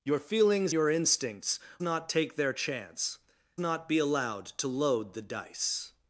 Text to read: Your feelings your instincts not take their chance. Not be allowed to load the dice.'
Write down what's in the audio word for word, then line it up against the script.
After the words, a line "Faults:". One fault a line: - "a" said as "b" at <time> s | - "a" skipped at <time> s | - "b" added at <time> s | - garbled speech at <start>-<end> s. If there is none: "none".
Your feelings your instincts not take their chance. Not be allowed to load the dice.'
Faults:
none